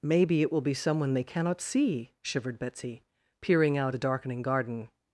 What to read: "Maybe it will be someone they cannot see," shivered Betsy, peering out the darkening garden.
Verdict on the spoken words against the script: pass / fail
pass